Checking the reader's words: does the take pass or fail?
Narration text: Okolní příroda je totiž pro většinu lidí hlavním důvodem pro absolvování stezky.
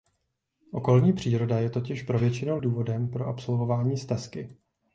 fail